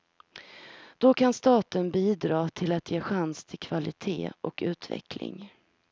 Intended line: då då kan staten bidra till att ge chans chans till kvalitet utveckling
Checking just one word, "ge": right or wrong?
right